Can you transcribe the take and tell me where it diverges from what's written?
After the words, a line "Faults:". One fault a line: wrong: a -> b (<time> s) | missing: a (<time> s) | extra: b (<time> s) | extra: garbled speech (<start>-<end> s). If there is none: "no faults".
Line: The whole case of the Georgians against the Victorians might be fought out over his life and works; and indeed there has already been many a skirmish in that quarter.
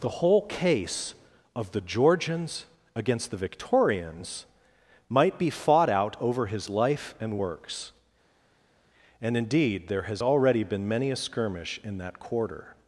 The whole case of the Georgians against the Victorians might be fought out over his life and works; and indeed there has already been many a skirmish in that quarter.
Faults:
no faults